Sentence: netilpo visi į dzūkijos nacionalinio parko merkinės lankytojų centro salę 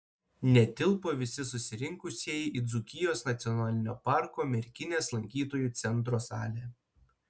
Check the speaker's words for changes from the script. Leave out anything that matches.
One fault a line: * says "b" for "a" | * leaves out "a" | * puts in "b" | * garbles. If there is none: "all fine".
* puts in "susirinkusieji"